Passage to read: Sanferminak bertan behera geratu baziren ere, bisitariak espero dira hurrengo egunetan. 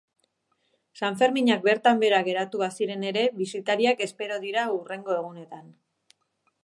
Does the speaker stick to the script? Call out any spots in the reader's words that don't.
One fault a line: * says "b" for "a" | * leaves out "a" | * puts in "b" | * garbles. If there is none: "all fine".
all fine